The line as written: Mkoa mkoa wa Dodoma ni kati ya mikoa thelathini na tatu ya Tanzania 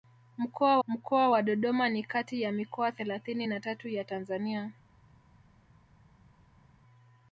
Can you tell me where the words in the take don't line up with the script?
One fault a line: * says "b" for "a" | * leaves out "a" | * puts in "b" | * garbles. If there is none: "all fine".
all fine